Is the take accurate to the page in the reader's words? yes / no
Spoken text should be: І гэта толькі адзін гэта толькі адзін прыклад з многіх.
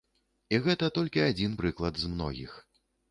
no